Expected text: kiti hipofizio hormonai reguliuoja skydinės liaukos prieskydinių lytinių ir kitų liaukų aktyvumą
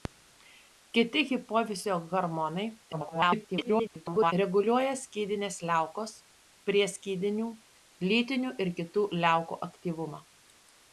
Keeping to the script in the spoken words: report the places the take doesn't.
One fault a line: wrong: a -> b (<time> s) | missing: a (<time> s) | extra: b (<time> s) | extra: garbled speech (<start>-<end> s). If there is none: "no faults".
extra: garbled speech (2.9-4.3 s)